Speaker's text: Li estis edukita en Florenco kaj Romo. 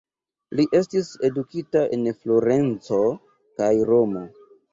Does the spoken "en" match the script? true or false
true